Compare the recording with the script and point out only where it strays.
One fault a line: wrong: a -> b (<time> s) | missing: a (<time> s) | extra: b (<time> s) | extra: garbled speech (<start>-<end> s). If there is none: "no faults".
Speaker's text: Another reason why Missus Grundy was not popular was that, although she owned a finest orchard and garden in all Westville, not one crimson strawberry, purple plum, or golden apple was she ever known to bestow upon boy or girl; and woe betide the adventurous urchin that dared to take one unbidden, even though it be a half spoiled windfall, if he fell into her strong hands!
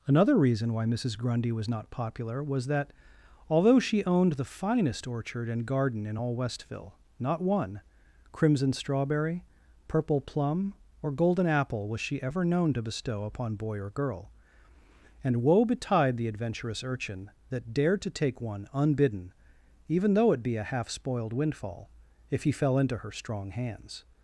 wrong: a -> the (4.3 s)